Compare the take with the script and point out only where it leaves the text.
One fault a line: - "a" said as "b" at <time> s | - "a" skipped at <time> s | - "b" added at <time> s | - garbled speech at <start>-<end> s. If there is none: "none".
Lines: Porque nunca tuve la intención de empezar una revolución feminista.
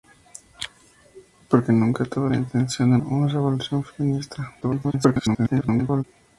- "empezar" skipped at 2.9 s
- garbled speech at 4.6-6.0 s